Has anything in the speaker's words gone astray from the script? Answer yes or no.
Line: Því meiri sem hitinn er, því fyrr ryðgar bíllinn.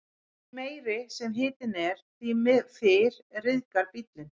no